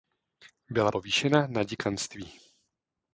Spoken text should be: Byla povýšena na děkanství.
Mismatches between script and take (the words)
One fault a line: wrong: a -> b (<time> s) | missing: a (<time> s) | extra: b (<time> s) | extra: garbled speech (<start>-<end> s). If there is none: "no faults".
no faults